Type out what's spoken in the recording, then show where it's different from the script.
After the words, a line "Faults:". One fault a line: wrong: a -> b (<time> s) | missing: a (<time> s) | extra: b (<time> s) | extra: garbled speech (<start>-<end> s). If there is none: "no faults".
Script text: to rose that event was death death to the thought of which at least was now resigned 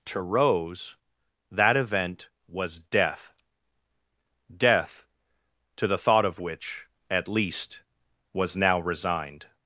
to rose that event was death death to the thought of which at least was now resigned
Faults:
no faults